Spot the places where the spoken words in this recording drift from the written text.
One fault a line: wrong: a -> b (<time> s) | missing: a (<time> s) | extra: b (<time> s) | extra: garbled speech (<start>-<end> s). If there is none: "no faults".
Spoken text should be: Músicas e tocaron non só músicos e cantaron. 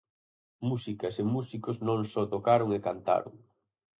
wrong: tocaron -> músicos (1.4 s)
wrong: músicos -> tocaron (2.3 s)